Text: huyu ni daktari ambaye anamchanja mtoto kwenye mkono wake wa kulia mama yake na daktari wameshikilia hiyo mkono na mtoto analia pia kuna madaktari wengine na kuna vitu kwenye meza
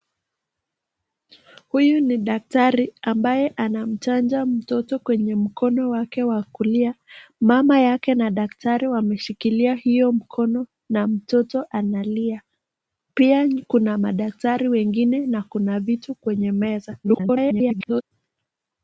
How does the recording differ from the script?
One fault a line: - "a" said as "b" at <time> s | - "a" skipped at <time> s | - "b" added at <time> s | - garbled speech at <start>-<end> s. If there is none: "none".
- garbled speech at 17.0-18.0 s